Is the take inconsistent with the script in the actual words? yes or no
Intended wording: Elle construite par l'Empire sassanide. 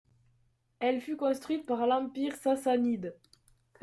yes